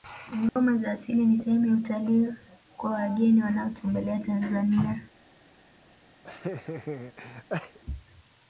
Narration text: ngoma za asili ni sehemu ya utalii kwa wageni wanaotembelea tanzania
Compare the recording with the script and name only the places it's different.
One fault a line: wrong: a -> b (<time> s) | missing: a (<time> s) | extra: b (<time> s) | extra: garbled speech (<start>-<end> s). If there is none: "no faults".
no faults